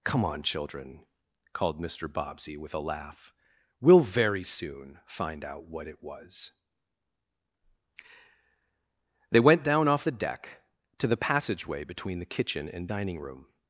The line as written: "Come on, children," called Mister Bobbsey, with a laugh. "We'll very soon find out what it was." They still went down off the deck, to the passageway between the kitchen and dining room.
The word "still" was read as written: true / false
false